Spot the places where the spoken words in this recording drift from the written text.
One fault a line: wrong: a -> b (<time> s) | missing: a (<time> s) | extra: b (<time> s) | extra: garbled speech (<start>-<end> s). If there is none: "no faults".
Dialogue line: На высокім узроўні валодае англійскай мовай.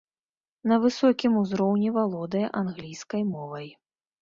no faults